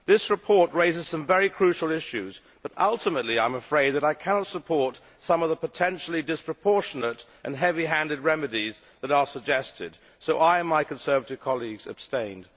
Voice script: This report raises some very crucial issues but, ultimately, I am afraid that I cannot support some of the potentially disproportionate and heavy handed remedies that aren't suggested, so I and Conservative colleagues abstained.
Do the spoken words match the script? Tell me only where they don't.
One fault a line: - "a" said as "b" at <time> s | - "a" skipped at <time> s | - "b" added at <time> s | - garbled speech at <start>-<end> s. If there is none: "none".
- "aren't" said as "are" at 9.1 s
- "my" added at 10.7 s